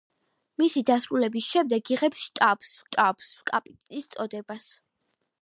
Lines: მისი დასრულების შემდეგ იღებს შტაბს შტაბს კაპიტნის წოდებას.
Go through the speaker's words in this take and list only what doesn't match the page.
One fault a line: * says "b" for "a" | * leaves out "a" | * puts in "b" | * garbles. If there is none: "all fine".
all fine